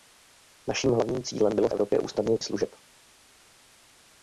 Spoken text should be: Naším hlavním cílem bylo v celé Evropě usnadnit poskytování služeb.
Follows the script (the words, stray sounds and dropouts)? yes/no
no